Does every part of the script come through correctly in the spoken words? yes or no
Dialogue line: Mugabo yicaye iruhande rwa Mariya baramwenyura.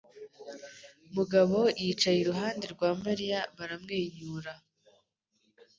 yes